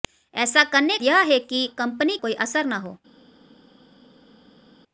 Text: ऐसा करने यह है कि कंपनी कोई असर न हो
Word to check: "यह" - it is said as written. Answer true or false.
true